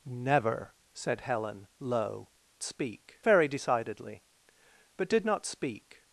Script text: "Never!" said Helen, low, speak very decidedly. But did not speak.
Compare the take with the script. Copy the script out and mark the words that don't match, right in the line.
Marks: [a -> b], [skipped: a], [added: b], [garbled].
"Never!" said Helen, low, speak very decidedly. But did not speak.